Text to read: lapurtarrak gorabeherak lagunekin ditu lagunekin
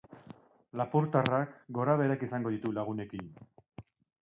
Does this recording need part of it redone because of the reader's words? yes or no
yes